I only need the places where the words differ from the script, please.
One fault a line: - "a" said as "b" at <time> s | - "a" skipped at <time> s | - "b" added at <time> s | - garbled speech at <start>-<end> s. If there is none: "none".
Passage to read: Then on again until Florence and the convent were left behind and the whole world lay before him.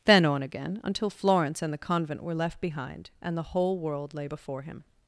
none